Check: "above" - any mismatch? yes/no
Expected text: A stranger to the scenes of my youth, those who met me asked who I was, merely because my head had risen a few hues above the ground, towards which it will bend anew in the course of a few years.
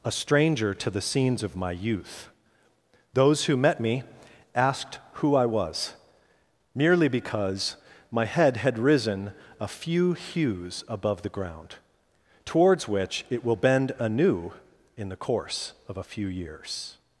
no